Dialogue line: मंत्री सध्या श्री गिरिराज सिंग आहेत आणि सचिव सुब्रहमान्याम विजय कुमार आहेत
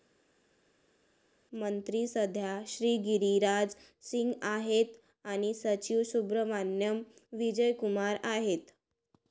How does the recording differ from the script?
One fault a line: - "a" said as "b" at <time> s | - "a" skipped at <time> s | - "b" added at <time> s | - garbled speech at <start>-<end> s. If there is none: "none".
none